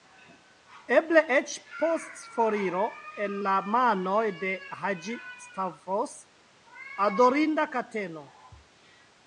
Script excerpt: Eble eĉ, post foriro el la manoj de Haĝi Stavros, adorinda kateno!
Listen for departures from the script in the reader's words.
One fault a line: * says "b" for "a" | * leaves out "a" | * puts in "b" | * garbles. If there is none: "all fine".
all fine